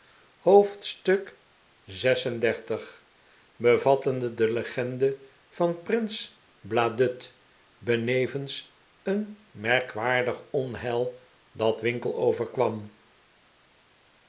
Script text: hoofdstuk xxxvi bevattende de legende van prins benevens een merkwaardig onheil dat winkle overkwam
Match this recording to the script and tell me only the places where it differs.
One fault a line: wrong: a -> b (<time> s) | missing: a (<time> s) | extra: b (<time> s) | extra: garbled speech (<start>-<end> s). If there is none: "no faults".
extra: bladud (6.6 s)